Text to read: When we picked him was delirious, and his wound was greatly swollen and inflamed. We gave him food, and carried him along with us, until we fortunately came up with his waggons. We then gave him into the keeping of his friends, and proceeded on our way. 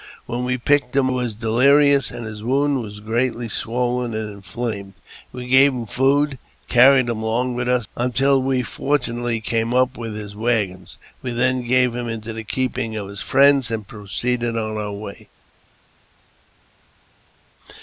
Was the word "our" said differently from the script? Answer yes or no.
no